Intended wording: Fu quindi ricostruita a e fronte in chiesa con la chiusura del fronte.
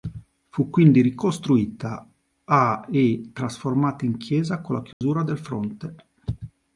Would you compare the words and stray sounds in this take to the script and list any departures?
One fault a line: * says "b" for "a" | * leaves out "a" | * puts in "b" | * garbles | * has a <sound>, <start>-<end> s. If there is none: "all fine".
* says "trasformata" for "fronte"
* has a dropout, 4.9-5.0 s